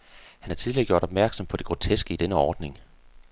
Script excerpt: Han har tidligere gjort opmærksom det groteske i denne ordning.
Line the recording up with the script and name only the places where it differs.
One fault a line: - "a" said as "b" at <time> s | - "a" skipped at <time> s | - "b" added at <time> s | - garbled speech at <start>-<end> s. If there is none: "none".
- "på" added at 1.4 s